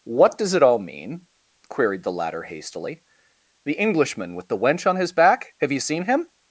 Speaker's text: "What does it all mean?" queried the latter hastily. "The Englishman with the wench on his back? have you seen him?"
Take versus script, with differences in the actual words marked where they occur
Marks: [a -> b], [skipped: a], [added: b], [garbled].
"What does it all mean?" queried the latter hastily. "The Englishman with the wench on his back? have you seen him?"